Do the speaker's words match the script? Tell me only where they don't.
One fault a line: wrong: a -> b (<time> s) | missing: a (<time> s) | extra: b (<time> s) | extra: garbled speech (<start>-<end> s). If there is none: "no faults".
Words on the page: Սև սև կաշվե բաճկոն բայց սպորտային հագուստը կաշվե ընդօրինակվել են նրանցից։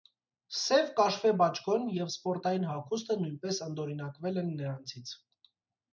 missing: սև (0.9 s)
wrong: բայց -> և (2.0 s)
wrong: կաշվե -> նույնպես (3.2 s)